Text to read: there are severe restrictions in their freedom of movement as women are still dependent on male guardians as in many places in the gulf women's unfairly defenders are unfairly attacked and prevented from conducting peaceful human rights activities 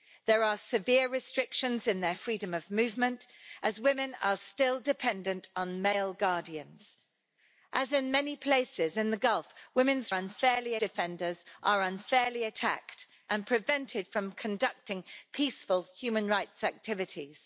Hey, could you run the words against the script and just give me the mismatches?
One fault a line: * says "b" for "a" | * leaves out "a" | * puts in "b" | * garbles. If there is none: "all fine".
all fine